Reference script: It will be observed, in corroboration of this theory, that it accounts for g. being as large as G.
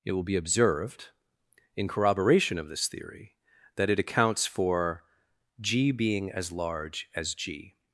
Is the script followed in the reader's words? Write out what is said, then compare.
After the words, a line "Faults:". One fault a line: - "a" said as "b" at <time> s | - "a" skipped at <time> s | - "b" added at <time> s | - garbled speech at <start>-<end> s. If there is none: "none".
It will be observed, in corroboration of this theory, that it accounts for g. being as large as G.
Faults:
none